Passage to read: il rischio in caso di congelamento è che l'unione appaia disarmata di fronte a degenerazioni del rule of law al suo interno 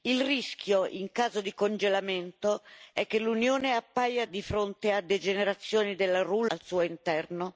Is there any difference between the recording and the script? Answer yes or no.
yes